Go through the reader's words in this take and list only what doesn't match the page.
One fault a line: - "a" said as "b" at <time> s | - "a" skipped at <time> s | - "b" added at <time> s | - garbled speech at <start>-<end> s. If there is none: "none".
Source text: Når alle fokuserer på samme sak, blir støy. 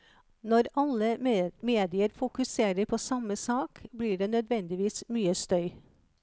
- "medier" added at 1.6 s
- "det nødvendigvis mye" added at 4.2 s